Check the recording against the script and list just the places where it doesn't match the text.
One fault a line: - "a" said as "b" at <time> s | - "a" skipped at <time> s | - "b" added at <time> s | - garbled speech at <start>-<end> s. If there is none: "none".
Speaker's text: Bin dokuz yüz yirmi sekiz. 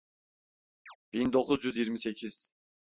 none